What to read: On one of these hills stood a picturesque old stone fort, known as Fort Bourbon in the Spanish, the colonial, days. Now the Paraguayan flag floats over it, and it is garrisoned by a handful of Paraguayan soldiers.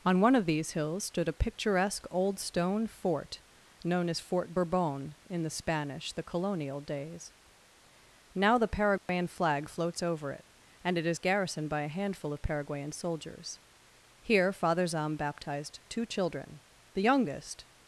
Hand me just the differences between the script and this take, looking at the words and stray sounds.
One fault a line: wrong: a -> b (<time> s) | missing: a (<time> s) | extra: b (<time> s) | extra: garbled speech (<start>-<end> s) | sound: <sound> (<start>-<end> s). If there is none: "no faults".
sound: dropout (9.0-9.1 s)
extra: Here Father Zahm baptized two children the youngest (14.2 s)